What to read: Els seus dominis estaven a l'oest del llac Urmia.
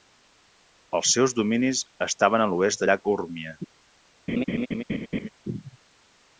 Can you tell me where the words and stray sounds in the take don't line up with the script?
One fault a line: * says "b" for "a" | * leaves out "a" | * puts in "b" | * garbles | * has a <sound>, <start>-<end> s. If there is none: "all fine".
* leaves out "del"
* has a laugh, 4.3-5.3 s